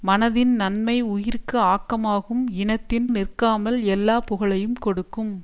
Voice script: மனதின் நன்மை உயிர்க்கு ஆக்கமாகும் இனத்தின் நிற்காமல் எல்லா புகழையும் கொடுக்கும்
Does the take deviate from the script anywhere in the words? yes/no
no